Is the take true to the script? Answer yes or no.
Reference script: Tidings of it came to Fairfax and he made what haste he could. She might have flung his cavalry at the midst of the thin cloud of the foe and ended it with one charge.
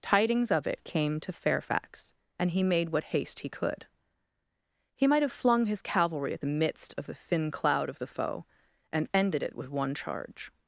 no